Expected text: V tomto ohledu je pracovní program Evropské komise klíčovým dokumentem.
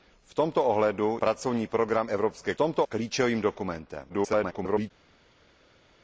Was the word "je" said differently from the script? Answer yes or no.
yes